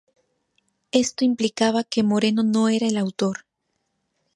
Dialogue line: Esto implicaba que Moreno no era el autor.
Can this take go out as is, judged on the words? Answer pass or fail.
pass